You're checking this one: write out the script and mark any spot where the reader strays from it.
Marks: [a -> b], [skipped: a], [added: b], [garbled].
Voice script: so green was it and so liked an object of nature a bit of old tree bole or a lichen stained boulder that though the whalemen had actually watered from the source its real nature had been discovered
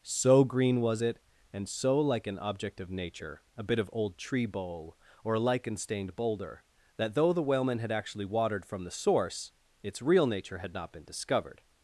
so green was it and so [liked -> like] an object of nature a bit of old tree bole or a lichen stained boulder that though the whalemen had actually watered from the source its real nature had [added: not] been discovered